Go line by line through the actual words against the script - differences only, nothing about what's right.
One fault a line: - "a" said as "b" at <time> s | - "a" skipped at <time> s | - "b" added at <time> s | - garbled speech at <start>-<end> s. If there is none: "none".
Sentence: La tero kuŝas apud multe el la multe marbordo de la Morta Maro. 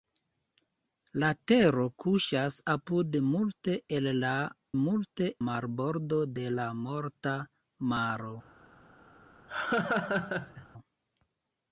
none